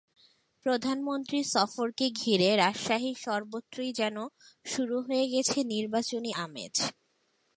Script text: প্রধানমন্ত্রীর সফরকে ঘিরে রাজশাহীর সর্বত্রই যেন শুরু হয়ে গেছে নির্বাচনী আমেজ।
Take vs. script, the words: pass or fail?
pass